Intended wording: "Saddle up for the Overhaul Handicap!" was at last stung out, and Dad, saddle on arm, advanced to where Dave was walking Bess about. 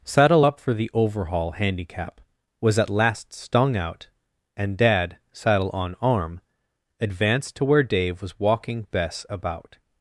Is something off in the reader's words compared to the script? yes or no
no